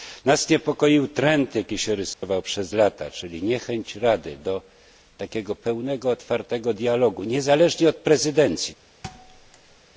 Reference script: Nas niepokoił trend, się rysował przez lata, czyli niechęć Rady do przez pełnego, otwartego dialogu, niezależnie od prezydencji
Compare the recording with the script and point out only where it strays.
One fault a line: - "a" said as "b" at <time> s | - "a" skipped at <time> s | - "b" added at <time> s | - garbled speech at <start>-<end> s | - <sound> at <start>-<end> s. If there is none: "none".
- "jaki" added at 1.6 s
- dropout at 2.1-2.2 s
- "przez" said as "takiego" at 5.2 s
- thud at 9.0-9.8 s